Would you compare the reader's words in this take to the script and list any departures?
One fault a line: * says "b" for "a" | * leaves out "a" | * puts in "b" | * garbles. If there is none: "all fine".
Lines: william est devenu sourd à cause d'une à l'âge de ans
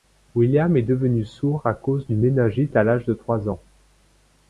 * puts in "méningite"
* puts in "trois"